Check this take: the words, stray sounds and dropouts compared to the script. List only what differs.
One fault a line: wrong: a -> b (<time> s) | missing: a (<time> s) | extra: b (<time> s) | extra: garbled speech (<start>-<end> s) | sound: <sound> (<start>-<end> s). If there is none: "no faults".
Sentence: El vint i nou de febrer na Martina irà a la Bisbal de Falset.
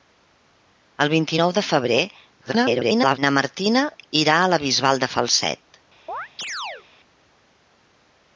extra: garbled speech (2.4-3.2 s)
sound: chirp (6.1-6.9 s)